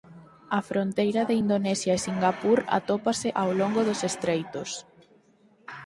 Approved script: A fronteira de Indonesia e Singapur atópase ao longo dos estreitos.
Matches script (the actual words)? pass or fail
pass